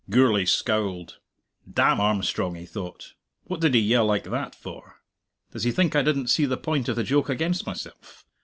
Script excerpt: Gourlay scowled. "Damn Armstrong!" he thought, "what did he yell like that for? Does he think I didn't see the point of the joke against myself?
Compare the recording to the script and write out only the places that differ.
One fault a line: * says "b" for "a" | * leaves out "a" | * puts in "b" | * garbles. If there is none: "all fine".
all fine